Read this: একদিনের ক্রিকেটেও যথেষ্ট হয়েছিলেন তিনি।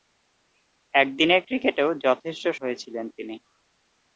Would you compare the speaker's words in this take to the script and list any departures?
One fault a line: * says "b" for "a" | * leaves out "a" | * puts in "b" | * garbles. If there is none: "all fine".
all fine